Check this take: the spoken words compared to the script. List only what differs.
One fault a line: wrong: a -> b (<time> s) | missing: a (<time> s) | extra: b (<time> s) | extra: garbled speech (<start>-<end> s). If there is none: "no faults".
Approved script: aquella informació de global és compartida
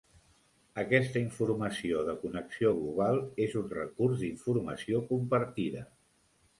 wrong: aquella -> aquesta (0.8 s)
extra: connexió (2.2 s)
extra: un recurs d'informació (3.6 s)